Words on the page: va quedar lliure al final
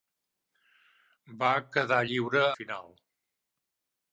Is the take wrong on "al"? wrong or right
wrong